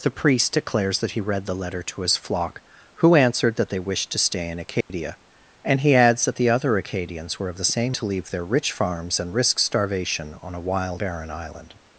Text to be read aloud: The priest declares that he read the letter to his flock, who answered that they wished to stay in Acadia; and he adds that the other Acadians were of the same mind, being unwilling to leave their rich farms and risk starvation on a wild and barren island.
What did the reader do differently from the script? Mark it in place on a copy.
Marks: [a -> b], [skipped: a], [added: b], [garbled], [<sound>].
The priest declares that he read the letter to his flock, who answered that they wished to stay in Acadia; [dropout] and he adds that the other Acadians were of the same [skipped: mind, being unwilling] to leave their rich farms and risk starvation on a wild [skipped: and] barren island.